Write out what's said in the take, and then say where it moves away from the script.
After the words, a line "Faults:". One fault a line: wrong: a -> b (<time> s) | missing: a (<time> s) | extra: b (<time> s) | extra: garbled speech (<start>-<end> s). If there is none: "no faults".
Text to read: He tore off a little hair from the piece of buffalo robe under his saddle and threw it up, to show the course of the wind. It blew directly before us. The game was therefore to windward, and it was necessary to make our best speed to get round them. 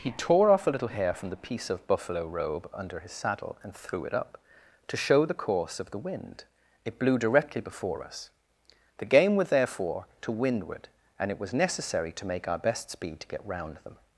He tore off a little hair from the piece of buffalo robe under his saddle and threw it up, to show the course of the wind. It blew directly before us. The game was therefore to windward, and it was necessary to make our best speed to get round them.
Faults:
no faults